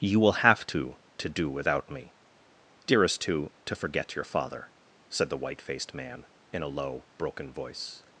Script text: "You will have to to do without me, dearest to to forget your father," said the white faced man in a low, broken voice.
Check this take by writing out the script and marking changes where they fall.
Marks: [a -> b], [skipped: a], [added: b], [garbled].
"You will have to to do without me, dearest to to forget your father," said the white faced man in a low, broken voice.